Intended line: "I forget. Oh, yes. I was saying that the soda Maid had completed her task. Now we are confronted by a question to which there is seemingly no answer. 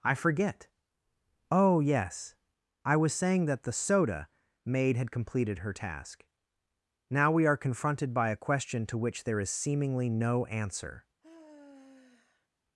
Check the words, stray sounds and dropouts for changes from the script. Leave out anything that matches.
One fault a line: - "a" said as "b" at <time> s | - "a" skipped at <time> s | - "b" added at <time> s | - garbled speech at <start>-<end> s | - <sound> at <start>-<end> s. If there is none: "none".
- sigh at 11.2-12.5 s